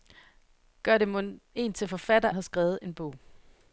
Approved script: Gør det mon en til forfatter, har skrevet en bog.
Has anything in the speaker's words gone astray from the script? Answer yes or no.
no